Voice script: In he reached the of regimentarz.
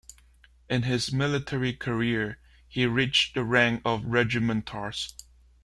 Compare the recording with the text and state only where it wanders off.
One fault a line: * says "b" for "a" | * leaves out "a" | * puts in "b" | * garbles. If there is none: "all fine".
* puts in "his military career"
* puts in "rank"